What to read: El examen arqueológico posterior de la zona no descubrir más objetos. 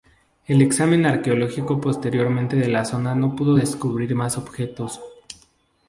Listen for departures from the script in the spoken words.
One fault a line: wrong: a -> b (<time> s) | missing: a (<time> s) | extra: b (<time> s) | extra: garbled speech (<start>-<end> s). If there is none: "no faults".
extra: pudo (3.4 s)